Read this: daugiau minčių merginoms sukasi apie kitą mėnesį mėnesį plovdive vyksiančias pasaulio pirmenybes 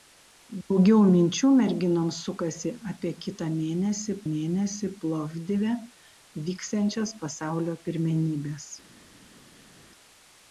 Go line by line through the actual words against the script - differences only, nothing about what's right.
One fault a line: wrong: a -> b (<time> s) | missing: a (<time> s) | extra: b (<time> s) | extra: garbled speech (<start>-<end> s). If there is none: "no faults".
no faults